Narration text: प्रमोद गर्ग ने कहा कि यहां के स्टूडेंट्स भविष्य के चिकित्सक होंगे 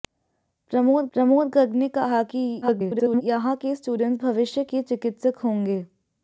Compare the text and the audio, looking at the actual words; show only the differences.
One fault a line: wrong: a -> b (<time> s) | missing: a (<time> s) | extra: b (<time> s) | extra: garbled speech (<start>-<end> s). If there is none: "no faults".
extra: प्रमोद (1.1 s)
extra: garbled speech (2.6-3.2 s)